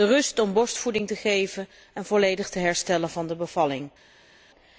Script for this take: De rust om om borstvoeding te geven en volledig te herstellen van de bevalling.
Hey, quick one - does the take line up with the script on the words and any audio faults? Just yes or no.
no